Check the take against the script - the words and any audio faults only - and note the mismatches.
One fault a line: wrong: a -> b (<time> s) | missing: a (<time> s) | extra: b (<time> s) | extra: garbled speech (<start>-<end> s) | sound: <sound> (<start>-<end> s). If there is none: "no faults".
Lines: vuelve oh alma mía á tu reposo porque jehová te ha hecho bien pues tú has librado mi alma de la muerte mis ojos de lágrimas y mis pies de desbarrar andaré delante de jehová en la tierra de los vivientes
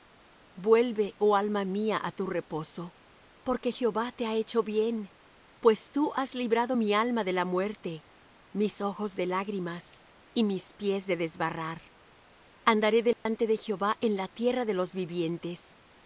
sound: dropout (13.1-13.3 s)